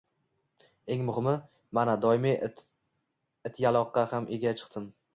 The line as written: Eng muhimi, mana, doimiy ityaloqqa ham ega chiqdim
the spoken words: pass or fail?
pass